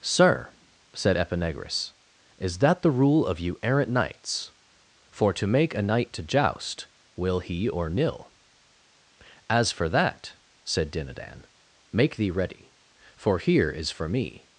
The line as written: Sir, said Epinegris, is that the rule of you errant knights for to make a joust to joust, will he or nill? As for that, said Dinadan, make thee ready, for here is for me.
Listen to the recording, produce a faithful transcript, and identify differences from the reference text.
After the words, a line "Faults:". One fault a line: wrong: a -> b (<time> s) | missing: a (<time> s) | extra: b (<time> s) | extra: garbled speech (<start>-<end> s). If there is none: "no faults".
Sir, said Epinegris, is that the rule of you errant knights for to make a knight to joust, will he or nill? As for that, said Dinadan, make thee ready, for here is for me.
Faults:
wrong: joust -> knight (5.8 s)